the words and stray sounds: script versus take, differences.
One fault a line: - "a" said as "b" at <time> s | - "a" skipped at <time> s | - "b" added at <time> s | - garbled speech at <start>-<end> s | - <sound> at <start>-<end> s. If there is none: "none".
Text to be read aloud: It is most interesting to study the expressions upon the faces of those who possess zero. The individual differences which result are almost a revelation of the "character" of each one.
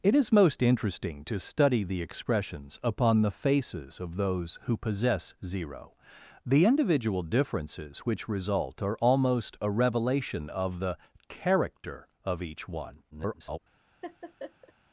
- garbled speech at 13.1-13.6 s
- laugh at 14.0-14.7 s